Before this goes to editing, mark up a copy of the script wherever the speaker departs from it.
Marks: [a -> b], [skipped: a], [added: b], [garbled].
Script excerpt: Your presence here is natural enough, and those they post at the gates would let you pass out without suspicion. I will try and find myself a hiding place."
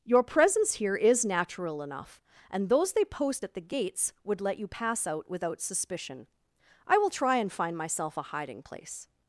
Your presence here is natural enough, and those they post at the gates would let you pass out without suspicion. I will try and find myself a hiding place."